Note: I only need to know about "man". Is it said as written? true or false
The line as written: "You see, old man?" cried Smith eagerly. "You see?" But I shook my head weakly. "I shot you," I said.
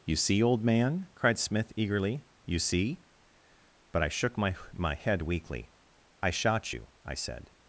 true